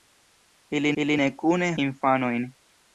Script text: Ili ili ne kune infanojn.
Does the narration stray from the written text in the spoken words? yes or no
no